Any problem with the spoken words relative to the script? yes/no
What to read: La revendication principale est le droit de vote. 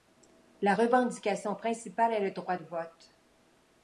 no